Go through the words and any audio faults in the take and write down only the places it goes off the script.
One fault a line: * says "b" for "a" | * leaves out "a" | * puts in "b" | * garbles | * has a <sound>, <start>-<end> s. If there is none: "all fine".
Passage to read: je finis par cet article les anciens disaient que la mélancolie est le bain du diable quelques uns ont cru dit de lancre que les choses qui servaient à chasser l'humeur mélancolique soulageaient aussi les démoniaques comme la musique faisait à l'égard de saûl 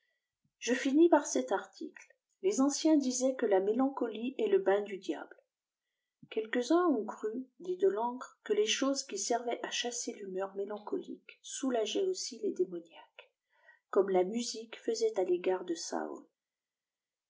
all fine